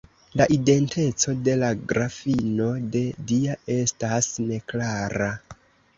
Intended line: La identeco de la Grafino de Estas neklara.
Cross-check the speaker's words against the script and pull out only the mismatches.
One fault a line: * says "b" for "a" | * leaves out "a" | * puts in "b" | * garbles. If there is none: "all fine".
* puts in "Dia"